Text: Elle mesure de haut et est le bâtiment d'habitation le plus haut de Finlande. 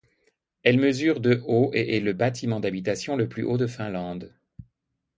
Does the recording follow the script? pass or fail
pass